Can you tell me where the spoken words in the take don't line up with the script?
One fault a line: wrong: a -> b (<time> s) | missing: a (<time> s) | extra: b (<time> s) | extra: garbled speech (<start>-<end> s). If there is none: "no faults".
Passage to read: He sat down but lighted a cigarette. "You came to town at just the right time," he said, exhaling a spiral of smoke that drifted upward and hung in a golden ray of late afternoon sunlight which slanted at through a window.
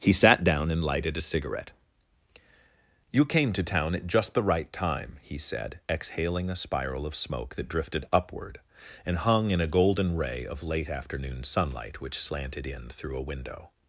wrong: but -> and (0.7 s)
wrong: at -> in (12.7 s)